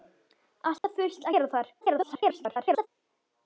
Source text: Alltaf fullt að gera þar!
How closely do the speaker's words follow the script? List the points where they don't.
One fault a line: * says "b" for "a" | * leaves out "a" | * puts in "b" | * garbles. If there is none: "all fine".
* leaves out "að"
* garbles